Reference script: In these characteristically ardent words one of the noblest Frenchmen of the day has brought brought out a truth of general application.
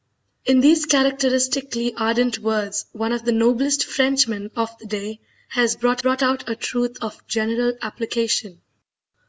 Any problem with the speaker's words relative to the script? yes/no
no